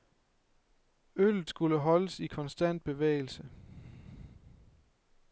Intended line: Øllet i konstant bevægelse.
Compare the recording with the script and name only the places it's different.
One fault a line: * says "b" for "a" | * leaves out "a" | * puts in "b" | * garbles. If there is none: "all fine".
* puts in "skulle holdes"